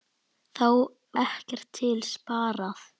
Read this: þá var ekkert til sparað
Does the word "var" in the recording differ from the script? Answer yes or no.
yes